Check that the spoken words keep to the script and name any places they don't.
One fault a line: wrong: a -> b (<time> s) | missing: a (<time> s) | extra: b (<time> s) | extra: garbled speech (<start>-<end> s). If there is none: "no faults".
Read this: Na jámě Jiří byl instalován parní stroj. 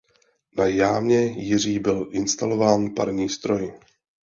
no faults